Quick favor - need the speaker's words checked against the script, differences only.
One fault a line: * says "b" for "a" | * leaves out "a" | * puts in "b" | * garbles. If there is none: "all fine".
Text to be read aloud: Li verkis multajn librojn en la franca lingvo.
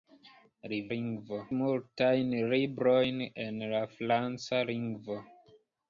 * says "lingvo" for "verkis"